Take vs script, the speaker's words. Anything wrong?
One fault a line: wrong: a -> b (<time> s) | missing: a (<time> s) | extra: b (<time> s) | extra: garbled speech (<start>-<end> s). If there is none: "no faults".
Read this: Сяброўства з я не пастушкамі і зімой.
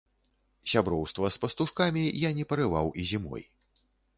extra: пастушкамі (1.4 s)
wrong: пастушкамі -> парываў (2.5 s)